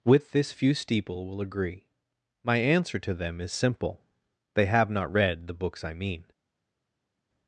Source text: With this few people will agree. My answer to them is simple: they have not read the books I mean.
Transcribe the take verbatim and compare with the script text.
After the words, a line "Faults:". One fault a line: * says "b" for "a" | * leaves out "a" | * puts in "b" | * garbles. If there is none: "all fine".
With this few steeple will agree. My answer to them is simple: they have not read the books I mean.
Faults:
* says "steeple" for "people"